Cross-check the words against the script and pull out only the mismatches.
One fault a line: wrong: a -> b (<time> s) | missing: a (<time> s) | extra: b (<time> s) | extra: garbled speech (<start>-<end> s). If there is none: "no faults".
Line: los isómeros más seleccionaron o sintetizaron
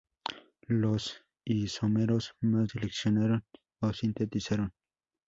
no faults